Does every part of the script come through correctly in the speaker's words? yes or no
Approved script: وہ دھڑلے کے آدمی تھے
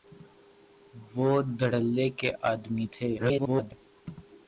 no